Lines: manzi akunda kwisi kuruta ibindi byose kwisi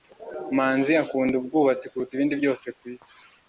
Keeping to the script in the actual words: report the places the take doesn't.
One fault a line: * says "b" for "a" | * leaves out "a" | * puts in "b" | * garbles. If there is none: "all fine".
* says "ubwubatsi" for "kwisi"